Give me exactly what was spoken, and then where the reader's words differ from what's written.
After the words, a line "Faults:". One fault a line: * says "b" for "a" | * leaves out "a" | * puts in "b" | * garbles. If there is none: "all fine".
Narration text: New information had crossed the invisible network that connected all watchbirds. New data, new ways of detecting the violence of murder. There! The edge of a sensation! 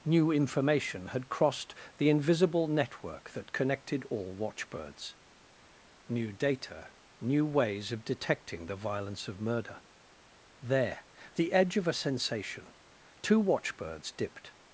New information had crossed the invisible network that connected all watchbirds. New data, new ways of detecting the violence of murder. There! The edge of a sensation! Two watchbirds dipped
Faults:
* puts in "Two watchbirds dipped"